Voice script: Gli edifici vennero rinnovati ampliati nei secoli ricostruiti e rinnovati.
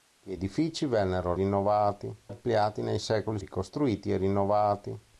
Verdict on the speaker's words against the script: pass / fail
pass